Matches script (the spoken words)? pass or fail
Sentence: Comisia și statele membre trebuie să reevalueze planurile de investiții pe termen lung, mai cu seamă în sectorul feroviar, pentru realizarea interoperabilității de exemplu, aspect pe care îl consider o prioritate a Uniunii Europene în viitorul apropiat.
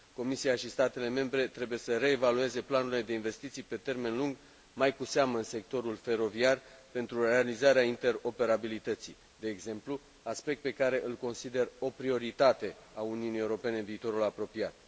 pass